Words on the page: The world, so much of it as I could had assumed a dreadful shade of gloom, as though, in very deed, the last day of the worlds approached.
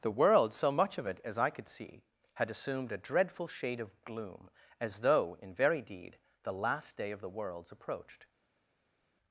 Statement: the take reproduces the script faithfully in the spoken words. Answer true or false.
false